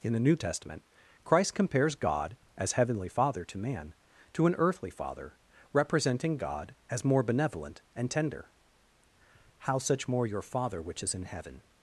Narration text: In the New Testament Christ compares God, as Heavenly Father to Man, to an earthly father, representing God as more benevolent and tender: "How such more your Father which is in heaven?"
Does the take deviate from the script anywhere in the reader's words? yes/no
no